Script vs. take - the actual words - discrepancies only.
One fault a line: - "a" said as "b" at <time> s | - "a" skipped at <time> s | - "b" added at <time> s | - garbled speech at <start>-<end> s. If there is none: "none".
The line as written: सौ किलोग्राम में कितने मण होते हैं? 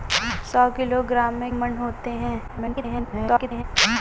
- "कितने" skipped at 1.5 s
- garbled speech at 2.5-3.6 s